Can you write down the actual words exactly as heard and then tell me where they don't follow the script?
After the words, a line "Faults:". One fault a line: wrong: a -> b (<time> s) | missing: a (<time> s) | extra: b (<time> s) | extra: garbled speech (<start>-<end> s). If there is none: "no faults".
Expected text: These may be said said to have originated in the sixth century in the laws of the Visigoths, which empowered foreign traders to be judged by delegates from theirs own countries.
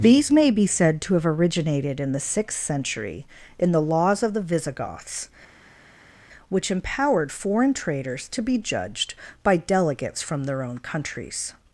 These may be said to have originated in the sixth century in the laws of the Visigoths, which empowered foreign traders to be judged by delegates from their own countries.
Faults:
missing: said (1.0 s)
wrong: theirs -> their (10.5 s)